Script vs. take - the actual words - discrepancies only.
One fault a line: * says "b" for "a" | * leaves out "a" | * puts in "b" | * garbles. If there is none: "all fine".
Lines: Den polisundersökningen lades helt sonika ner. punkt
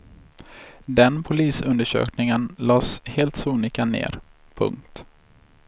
all fine